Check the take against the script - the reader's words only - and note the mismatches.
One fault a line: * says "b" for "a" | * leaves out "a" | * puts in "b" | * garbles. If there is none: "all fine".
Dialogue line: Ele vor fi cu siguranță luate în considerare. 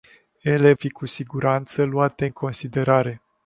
* leaves out "vor"